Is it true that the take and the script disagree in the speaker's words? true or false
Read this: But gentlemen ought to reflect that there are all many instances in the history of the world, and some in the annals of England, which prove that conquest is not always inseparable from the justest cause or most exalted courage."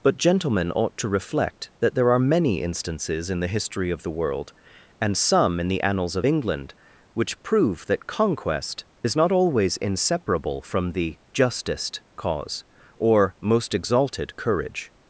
true